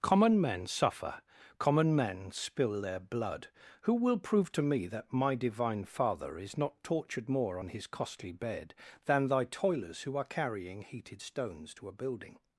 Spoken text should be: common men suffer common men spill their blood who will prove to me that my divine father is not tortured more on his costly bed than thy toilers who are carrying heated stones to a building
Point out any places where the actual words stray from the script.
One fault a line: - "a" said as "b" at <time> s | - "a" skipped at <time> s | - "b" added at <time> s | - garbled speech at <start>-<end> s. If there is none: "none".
none